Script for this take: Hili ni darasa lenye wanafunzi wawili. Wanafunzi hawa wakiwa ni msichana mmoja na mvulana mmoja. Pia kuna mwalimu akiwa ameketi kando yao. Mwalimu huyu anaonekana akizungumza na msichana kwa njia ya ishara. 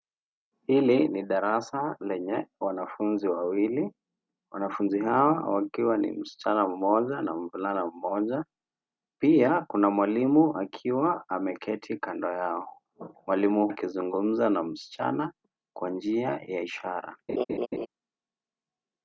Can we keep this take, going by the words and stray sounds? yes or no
no